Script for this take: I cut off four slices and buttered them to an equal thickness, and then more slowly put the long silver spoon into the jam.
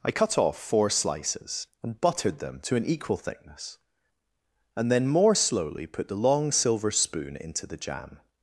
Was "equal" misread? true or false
false